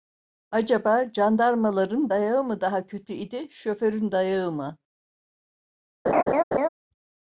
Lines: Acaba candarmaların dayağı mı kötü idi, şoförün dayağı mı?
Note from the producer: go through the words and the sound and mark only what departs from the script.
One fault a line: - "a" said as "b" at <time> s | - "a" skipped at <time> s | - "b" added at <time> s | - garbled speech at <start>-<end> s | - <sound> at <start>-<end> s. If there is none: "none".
- "daha" added at 2.6 s
- laugh at 6.1-6.7 s